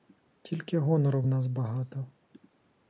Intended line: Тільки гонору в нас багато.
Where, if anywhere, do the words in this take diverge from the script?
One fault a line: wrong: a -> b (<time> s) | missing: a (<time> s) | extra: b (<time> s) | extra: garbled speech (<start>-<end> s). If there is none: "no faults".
no faults